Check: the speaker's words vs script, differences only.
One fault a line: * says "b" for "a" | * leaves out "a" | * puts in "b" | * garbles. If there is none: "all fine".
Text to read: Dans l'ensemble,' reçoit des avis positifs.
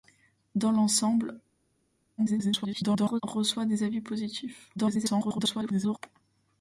* garbles
* garbles